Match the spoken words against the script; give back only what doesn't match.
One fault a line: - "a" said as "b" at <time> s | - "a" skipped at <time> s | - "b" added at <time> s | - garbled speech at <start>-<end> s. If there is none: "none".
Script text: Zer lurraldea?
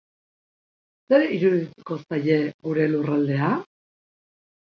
- "irudituko zaie gure" added at 1.4 s